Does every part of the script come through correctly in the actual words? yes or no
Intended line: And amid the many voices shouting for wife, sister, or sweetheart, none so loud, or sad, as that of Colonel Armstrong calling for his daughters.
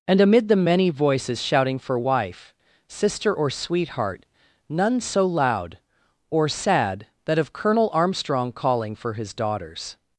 no